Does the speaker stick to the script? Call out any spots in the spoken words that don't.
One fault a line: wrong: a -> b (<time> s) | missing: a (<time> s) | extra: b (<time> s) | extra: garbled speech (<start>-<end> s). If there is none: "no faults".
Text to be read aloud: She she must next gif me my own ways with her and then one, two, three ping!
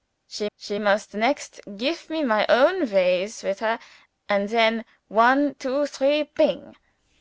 no faults